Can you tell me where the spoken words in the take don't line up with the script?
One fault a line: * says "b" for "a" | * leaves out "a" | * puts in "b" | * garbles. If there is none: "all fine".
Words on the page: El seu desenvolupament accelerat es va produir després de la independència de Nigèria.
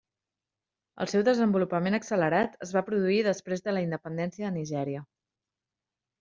all fine